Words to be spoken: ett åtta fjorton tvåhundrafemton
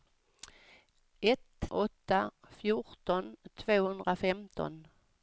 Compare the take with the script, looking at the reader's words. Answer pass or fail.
pass